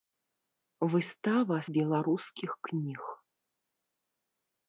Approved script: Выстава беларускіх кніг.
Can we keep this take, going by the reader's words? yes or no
yes